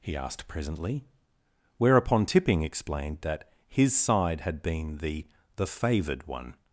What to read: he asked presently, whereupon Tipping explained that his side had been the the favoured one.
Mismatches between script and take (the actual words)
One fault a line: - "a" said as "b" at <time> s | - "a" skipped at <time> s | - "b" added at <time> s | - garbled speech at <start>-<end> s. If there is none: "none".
none